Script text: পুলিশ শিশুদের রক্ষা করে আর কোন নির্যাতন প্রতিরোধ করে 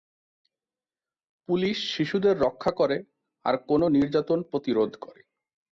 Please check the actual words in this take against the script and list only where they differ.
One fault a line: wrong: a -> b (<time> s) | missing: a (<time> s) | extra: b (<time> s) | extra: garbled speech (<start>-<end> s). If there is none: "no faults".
no faults